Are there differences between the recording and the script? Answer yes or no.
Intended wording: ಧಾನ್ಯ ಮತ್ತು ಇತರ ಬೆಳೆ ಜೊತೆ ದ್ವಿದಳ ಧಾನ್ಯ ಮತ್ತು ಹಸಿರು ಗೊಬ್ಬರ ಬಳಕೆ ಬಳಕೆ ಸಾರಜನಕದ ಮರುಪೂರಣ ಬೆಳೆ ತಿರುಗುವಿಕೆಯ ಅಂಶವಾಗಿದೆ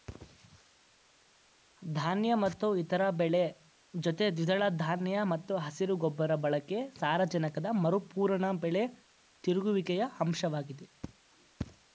yes